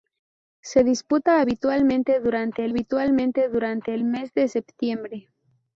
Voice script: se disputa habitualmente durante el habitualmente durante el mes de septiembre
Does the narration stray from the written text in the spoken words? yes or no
no